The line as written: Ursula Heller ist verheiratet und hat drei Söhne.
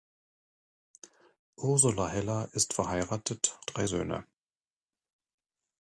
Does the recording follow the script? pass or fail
fail